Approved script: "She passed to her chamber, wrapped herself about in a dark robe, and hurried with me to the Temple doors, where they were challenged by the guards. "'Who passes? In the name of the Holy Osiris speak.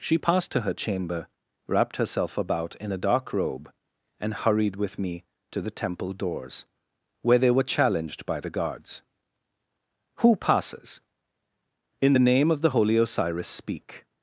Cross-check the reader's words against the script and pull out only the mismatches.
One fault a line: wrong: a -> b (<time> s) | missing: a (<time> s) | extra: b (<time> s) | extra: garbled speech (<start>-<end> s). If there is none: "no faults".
no faults